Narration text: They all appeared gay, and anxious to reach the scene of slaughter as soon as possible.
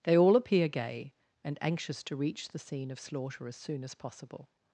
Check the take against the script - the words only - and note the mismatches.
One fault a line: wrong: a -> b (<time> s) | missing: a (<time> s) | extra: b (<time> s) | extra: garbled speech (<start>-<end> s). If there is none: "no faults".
wrong: appeared -> appear (0.3 s)